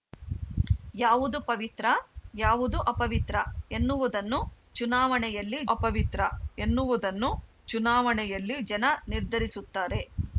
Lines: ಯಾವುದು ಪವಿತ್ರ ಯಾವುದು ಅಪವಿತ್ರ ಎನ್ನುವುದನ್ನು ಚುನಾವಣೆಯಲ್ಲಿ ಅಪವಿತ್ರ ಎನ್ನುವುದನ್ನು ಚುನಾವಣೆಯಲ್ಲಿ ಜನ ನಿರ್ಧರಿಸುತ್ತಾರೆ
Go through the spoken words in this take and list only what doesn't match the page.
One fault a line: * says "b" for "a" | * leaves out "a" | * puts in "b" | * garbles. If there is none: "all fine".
all fine